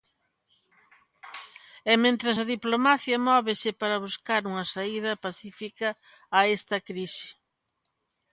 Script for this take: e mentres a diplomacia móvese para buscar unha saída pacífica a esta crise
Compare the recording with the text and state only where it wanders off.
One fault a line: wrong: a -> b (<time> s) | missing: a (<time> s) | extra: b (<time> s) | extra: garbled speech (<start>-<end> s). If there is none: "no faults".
no faults